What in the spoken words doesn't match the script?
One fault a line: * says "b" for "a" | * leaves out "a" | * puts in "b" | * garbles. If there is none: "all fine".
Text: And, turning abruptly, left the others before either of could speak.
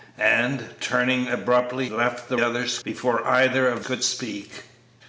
all fine